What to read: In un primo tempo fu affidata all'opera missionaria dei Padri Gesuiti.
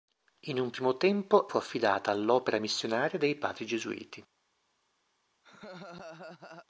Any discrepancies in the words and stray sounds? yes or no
yes